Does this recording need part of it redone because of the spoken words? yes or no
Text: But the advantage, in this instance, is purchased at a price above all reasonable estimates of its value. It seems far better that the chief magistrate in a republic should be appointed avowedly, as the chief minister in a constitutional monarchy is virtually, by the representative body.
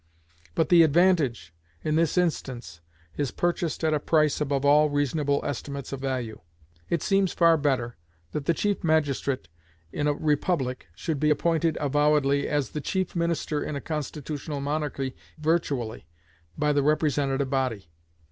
yes